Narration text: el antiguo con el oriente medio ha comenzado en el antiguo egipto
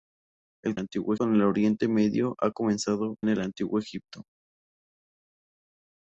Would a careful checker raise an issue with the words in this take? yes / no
no